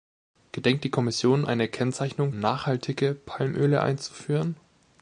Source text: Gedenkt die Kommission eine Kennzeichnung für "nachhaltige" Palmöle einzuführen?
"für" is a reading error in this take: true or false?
true